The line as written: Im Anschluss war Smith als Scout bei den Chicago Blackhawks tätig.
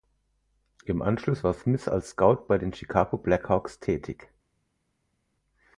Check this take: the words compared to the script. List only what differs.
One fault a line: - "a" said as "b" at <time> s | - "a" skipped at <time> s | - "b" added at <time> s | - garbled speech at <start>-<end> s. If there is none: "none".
none